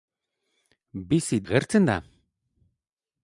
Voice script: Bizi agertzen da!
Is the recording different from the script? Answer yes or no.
no